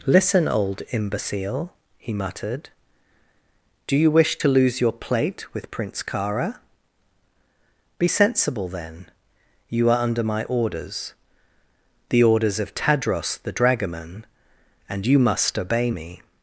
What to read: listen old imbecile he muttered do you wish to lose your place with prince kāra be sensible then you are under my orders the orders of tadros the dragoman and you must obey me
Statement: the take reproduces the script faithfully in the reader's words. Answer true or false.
false